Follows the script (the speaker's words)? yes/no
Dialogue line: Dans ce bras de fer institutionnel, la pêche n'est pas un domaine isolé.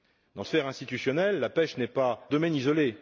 no